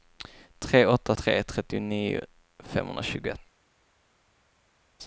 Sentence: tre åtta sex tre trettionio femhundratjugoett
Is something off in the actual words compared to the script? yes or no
yes